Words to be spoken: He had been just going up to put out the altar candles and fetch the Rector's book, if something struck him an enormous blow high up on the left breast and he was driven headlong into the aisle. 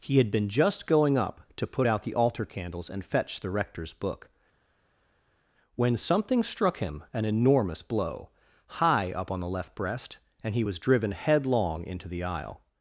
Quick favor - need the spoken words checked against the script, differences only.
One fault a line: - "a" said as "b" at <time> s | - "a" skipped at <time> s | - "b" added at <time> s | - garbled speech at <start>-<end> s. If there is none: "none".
- "if" said as "when" at 5.8 s